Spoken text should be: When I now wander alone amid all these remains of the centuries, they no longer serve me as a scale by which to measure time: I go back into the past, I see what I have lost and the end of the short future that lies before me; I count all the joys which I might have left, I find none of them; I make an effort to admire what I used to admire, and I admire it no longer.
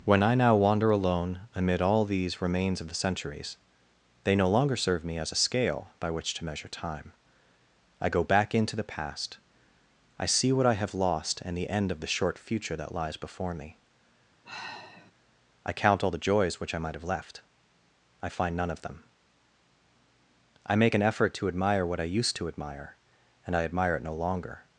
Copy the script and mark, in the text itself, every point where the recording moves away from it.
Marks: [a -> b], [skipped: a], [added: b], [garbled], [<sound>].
When I now wander alone amid all these remains of the centuries, they no longer serve me as a scale by which to measure time: I go back into the past, I see what I have lost and the end of the short future that lies before me; [sigh] I count all the joys which I might have left, I find none of them; I make an effort to admire what I used to admire, and I admire it no longer.